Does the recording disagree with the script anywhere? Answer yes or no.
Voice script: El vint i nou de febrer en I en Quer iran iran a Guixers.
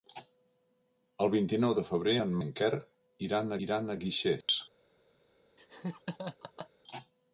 no